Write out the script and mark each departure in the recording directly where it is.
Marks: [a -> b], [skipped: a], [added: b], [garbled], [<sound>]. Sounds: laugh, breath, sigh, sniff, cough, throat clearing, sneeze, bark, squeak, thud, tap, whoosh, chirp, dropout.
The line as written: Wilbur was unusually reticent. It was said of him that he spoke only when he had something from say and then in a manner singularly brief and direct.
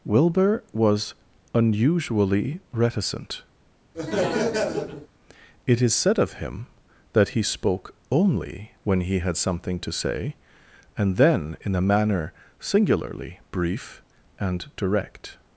Wilbur was unusually reticent. [laugh] It [was -> is] said of him that he spoke only when he had something [from -> to] say and then in a manner singularly brief and direct.